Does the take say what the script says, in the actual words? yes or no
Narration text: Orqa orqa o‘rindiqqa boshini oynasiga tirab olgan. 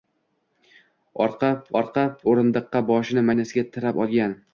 yes